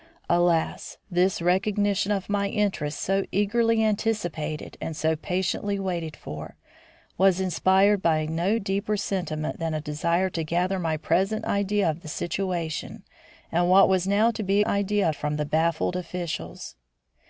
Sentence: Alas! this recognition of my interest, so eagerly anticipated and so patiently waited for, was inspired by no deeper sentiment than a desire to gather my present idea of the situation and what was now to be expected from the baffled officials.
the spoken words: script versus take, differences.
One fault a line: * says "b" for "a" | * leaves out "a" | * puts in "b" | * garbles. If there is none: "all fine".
* says "idea" for "expected"